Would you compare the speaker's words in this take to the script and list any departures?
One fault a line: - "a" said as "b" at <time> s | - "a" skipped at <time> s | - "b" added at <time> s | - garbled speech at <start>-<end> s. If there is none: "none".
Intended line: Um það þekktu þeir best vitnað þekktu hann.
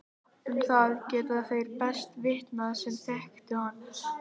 - "þekktu" said as "geta" at 1.1 s
- "sem" added at 2.8 s